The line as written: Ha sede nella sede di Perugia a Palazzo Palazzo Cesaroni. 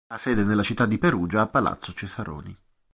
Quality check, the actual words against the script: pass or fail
fail